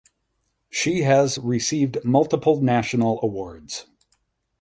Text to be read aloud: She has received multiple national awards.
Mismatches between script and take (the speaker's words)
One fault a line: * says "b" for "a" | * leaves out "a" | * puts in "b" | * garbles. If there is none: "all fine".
all fine